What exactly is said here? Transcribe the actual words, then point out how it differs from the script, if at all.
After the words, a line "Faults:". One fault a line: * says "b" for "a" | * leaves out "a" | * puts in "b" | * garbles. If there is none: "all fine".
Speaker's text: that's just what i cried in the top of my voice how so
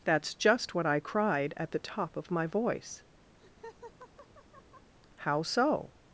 that's just what i cried at the top of my voice how so
Faults:
* says "at" for "in"